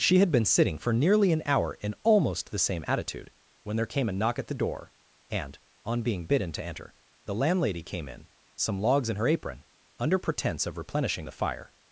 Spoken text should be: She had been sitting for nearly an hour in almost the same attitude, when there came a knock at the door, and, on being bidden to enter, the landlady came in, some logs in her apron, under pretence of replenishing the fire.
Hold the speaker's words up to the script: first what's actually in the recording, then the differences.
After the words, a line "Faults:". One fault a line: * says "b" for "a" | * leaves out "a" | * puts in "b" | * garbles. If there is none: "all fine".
She had been sitting for nearly an hour in almost the same attitude, when there came a knock at the door, and, on being bidden to enter, the landlady came in, some logs in her apron, under pretence of replenishing the fire.
Faults:
all fine